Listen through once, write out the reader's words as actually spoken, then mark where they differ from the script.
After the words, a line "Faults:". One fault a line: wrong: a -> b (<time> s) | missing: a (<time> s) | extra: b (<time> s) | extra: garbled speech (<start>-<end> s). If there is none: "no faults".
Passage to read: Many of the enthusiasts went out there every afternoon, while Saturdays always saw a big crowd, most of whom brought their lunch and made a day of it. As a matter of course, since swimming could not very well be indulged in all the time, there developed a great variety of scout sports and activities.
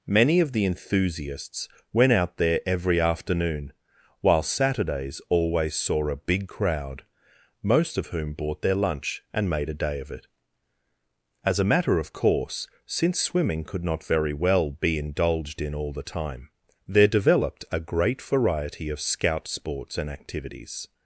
Many of the enthusiasts went out there every afternoon, while Saturdays always saw a big crowd, most of whom bought their lunch and made a day of it. As a matter of course, since swimming could not very well be indulged in all the time, there developed a great variety of scout sports and activities.
Faults:
wrong: brought -> bought (8.3 s)